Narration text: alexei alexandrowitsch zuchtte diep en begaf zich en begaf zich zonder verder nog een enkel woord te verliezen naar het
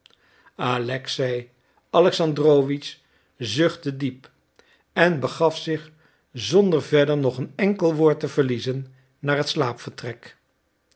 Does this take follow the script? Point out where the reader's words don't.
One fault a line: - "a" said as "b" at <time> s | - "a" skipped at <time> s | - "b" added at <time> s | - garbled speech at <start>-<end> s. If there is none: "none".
- "en begaf zich" skipped at 5.9 s